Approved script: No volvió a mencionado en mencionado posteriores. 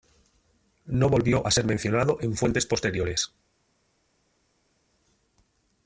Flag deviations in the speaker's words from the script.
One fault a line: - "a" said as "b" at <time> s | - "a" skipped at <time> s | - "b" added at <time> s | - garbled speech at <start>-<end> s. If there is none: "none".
- "ser" added at 1.5 s
- "mencionado" said as "fuentes" at 2.4 s